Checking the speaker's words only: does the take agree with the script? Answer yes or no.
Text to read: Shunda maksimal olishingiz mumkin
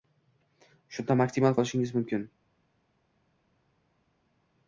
yes